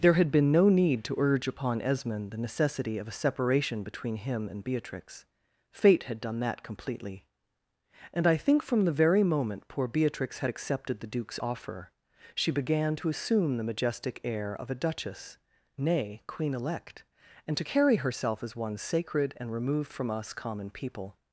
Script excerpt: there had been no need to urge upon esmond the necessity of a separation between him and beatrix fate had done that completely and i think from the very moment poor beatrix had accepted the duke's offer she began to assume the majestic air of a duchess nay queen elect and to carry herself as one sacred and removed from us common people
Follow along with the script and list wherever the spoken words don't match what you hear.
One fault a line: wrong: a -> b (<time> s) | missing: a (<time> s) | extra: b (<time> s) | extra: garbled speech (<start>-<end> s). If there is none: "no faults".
no faults